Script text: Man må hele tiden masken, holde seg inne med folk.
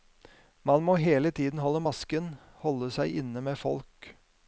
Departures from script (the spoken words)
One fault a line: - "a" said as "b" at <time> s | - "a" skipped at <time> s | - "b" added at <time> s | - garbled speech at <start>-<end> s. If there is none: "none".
- "holde" added at 1.6 s